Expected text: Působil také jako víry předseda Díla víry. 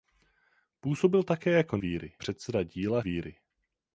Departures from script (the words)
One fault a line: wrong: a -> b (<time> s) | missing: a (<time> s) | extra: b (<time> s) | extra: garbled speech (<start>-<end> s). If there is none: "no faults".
no faults